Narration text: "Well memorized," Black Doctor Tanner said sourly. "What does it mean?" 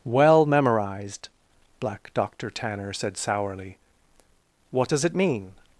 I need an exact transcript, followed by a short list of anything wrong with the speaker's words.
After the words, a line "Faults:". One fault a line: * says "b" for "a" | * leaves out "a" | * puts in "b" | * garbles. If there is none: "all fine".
"Well memorized," Black Doctor Tanner said sourly. "What does it mean?"
Faults:
all fine